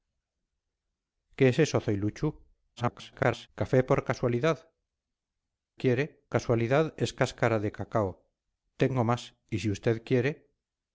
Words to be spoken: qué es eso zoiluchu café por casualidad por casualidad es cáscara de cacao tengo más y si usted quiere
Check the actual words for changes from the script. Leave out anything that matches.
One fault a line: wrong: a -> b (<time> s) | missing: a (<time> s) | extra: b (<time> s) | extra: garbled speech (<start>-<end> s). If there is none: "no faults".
extra: garbled speech (2.8-3.5 s)
wrong: por -> quiere (5.8 s)